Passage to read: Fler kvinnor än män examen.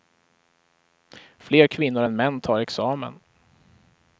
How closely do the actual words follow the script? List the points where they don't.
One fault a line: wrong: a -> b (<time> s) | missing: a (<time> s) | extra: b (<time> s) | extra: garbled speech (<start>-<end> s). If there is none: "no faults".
extra: tar (2.4 s)